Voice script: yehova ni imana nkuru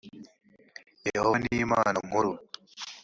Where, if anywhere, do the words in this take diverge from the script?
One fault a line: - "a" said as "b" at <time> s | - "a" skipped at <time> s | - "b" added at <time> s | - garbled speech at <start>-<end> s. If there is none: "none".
none